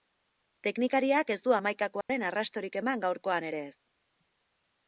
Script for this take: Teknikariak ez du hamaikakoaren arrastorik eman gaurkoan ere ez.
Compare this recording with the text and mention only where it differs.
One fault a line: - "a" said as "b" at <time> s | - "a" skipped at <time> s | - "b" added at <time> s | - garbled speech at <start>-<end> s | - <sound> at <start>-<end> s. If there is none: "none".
- dropout at 2.0-2.1 s